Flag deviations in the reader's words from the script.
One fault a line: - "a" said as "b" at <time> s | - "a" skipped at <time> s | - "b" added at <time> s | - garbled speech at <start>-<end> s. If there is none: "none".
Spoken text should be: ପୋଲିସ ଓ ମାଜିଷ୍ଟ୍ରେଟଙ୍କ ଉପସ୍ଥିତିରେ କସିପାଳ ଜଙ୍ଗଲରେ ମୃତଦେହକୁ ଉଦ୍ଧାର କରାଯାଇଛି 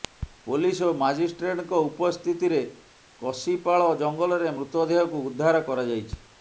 none